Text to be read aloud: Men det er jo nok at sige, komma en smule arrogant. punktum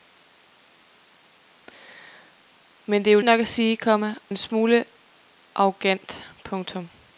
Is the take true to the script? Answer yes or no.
yes